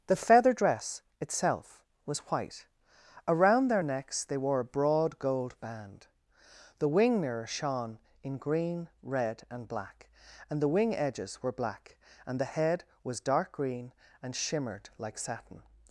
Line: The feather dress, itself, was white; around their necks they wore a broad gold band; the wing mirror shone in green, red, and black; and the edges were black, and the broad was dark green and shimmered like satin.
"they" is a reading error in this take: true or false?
false